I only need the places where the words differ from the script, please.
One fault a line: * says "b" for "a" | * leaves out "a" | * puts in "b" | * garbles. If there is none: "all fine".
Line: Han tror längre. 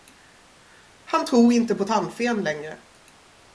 * puts in "inte på tandfen"